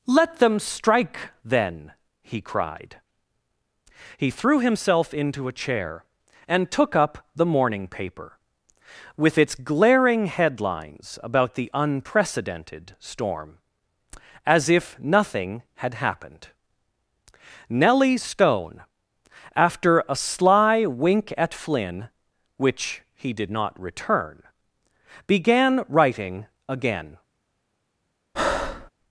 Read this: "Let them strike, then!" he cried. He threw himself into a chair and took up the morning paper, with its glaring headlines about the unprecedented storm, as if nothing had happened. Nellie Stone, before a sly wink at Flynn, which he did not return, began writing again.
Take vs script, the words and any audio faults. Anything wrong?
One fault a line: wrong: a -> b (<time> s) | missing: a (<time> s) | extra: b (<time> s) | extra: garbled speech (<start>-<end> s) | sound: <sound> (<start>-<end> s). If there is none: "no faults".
wrong: before -> after (19.6 s)
sound: breath (28.3-28.9 s)